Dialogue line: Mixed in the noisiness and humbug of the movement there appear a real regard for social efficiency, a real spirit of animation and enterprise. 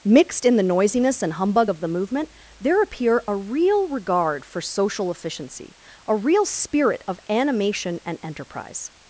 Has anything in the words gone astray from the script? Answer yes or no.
no